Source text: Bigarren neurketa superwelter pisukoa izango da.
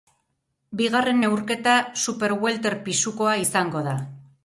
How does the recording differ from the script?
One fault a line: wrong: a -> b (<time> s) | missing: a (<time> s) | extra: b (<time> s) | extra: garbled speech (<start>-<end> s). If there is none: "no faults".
no faults